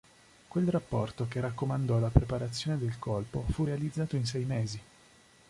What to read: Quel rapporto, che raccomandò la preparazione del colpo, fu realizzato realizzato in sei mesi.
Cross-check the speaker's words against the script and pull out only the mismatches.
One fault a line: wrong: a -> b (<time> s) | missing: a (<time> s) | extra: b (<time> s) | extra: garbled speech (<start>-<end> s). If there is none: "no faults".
missing: realizzato (4.1 s)